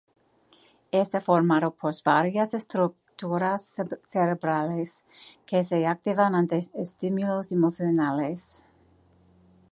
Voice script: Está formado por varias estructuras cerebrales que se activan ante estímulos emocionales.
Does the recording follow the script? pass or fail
pass